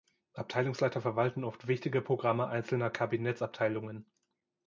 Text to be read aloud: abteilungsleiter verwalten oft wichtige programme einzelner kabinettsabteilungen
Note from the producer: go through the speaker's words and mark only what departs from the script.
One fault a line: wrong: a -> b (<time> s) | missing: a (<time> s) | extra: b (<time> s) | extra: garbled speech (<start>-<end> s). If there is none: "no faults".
no faults